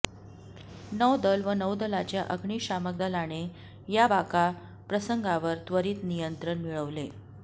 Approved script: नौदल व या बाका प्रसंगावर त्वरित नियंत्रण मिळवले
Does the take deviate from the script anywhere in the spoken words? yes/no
yes